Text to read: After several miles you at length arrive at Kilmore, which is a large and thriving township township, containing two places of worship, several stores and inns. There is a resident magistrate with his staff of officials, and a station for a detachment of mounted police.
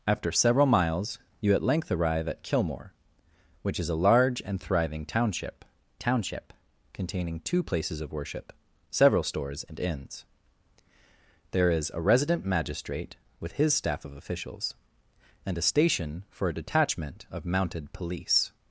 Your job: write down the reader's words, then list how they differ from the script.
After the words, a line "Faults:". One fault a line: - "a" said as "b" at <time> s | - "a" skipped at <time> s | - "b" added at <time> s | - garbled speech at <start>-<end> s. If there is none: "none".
After several miles you at length arrive at Kilmore, which is a large and thriving township township, containing two places of worship, several stores and inns. There is a resident magistrate with his staff of officials, and a station for a detachment of mounted police.
Faults:
none